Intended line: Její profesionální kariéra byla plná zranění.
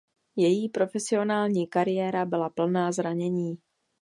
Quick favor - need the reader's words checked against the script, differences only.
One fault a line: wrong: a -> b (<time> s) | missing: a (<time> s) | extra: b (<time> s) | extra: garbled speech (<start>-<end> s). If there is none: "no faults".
no faults